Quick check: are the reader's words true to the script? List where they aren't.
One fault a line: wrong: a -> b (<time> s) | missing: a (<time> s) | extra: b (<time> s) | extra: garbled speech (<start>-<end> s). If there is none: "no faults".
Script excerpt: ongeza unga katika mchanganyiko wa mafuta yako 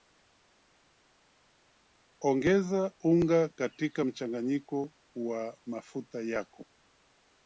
no faults